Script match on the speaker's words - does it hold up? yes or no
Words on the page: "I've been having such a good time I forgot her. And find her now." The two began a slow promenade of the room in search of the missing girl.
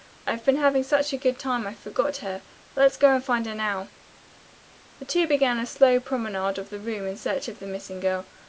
no